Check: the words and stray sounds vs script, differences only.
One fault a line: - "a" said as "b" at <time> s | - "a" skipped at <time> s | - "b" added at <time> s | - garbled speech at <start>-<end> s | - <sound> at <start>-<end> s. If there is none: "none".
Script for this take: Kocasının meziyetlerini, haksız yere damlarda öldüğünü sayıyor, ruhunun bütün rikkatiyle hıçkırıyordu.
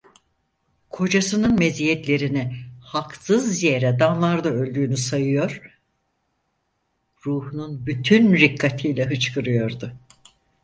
none